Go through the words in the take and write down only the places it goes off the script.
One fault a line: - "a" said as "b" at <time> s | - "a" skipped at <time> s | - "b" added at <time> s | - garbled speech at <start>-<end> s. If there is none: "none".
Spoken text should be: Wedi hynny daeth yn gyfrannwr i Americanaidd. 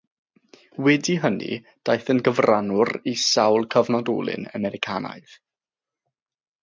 - "sawl cyfnodolyn" added at 3.3 s